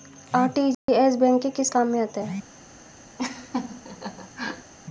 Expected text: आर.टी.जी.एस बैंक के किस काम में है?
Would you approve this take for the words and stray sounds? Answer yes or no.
no